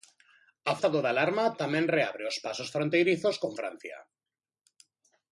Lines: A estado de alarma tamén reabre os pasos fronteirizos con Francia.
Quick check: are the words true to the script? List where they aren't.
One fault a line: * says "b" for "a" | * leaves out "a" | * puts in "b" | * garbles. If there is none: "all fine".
all fine